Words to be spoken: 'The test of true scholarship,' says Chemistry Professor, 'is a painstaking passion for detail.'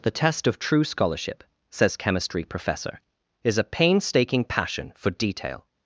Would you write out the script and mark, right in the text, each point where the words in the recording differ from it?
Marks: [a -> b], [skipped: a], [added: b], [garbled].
'The test of true scholarship,' says Chemistry Professor, 'is a painstaking passion for detail.'